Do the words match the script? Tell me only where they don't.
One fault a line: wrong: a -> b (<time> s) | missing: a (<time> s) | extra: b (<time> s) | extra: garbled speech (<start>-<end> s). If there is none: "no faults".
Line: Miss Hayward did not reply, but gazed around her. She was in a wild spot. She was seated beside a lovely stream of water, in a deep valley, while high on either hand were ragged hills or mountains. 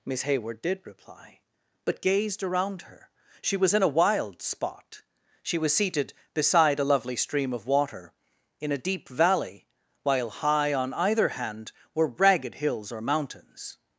missing: not (0.8 s)